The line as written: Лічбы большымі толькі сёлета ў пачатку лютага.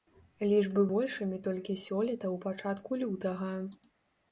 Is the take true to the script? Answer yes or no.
yes